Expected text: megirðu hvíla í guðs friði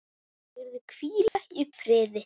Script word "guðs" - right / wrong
wrong